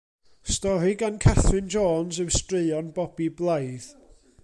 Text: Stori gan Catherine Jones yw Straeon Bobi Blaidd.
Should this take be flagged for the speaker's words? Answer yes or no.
no